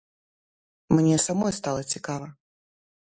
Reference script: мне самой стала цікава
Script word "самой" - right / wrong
right